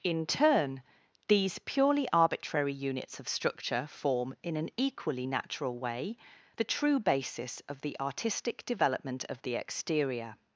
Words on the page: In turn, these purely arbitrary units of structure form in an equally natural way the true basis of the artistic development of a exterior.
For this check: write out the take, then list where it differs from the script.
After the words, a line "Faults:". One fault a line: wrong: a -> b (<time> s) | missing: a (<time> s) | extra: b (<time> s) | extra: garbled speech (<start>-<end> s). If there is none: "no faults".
In turn, these purely arbitrary units of structure form in an equally natural way the true basis of the artistic development of the exterior.
Faults:
wrong: a -> the (9.4 s)